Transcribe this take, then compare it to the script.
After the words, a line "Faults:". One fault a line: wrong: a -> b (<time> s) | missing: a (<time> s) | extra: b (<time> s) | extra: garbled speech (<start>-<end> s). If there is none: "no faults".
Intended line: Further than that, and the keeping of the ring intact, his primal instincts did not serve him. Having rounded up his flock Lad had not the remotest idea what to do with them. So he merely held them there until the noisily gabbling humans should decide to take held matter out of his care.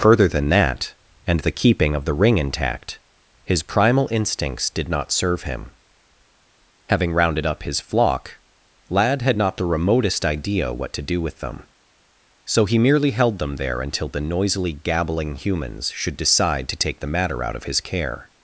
Further than that, and the keeping of the ring intact, his primal instincts did not serve him. Having rounded up his flock Lad had not the remotest idea what to do with them. So he merely held them there until the noisily gabbling humans should decide to take the matter out of his care.
Faults:
wrong: held -> the (17.0 s)